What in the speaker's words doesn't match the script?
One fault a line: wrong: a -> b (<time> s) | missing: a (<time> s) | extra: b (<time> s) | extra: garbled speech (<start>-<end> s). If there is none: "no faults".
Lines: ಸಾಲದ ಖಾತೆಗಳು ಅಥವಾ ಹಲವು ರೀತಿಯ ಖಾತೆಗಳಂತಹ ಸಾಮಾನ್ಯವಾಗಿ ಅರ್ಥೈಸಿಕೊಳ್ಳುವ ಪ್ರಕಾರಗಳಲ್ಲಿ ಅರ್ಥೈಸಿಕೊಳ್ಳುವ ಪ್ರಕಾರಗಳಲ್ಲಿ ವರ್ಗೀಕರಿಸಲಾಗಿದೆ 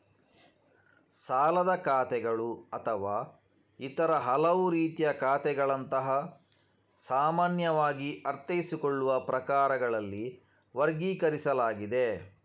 extra: ಇತರ (3.8 s)
missing: ಅರ್ಥೈಸಿಕೊಳ್ಳುವ ಪ್ರಕಾರಗಳಲ್ಲಿ (10.3 s)